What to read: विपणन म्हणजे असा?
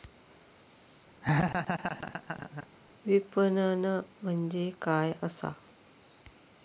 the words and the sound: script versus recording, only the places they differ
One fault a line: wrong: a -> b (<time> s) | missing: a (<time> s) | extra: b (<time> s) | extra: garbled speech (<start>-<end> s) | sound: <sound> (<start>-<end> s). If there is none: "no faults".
sound: laugh (1.2-2.7 s)
extra: काय (4.8 s)